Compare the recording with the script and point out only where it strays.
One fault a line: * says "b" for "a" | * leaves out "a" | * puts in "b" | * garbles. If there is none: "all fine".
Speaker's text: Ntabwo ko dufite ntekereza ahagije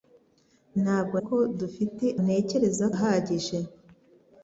all fine